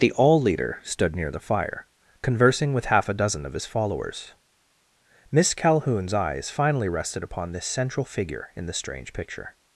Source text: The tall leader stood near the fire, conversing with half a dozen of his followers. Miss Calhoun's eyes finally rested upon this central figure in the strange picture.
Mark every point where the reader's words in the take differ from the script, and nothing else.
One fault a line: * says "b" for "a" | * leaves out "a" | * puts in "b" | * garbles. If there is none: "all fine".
* says "all" for "tall"